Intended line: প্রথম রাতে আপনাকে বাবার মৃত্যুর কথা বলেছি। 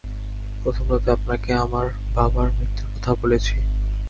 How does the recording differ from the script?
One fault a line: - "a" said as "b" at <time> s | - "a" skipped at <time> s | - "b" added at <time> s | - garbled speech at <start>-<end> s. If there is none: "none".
- "আমার" added at 1.5 s